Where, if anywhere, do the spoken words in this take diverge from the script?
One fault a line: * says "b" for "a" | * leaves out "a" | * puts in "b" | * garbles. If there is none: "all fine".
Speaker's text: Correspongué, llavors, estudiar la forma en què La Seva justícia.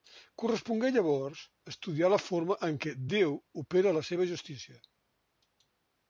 * puts in "Déu opera"